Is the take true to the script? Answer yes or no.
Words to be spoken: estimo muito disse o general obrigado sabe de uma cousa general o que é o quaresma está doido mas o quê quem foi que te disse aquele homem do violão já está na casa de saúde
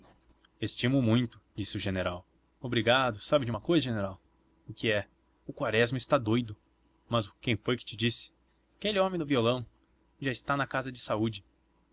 no